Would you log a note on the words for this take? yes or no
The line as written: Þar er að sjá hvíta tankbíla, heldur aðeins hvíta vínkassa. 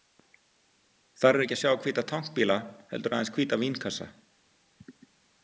yes